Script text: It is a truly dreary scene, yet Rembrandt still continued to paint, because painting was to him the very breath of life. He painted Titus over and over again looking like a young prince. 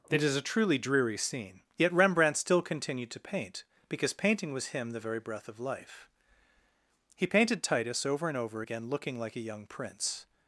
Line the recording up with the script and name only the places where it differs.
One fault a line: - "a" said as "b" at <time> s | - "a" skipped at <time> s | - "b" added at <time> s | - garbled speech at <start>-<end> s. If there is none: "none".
- "to" skipped at 4.7 s